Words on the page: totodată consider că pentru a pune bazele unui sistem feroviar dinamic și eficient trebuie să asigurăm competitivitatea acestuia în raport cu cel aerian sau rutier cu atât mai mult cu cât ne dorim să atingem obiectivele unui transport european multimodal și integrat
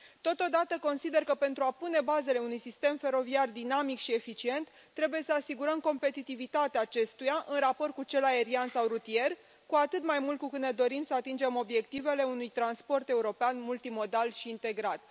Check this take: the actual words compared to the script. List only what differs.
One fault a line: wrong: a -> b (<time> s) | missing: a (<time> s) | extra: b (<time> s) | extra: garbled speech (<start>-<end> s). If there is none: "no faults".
no faults